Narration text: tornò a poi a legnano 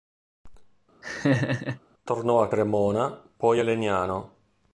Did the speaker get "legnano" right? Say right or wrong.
right